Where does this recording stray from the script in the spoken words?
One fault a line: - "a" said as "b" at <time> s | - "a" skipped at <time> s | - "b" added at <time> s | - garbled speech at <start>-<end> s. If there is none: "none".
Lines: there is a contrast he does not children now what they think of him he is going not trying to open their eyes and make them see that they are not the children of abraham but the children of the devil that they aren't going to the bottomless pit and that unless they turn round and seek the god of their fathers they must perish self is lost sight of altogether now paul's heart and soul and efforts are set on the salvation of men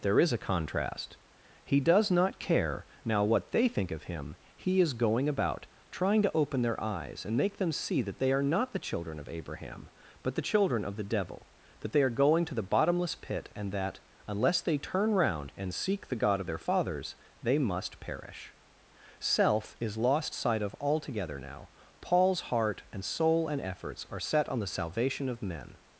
- "children" said as "care" at 2.4 s
- "not" said as "about" at 5.3 s
- "aren't" said as "are" at 12.0 s